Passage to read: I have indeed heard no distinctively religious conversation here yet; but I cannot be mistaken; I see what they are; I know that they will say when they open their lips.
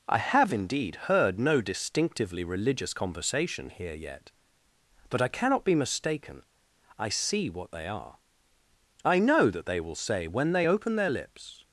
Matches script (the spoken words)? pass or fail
pass